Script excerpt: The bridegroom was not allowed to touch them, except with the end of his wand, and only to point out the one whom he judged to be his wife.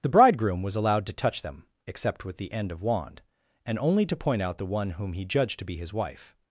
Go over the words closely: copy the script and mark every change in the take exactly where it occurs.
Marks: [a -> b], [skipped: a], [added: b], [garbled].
The bridegroom was [skipped: not] allowed to touch them, except with the end of [skipped: his] wand, and only to point out the one whom he judged to be his wife.